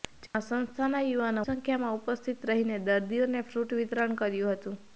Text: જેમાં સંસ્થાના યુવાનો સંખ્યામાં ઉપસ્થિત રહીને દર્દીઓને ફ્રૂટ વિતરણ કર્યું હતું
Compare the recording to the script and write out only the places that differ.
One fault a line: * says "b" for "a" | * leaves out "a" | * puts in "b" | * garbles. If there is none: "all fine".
all fine